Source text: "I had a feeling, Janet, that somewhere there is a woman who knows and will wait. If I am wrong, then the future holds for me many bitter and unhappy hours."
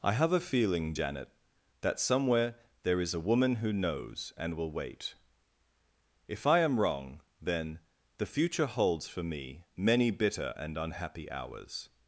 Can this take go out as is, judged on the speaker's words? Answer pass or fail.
fail